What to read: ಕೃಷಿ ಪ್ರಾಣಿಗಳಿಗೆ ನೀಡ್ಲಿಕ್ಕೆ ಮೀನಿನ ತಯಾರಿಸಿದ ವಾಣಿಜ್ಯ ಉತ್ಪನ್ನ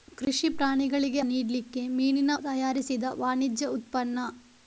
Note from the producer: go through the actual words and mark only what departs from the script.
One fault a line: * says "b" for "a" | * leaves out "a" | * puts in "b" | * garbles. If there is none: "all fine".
all fine